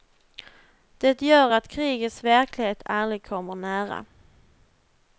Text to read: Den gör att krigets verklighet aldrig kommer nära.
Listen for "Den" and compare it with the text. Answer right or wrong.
wrong